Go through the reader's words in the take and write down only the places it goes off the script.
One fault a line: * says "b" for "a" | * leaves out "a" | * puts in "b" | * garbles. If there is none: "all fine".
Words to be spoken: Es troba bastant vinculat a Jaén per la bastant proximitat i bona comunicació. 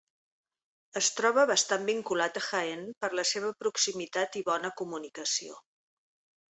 * says "seva" for "bastant"